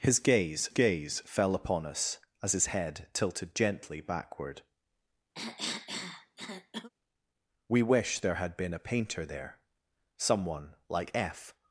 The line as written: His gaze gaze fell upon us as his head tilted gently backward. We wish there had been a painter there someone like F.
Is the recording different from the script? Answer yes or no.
no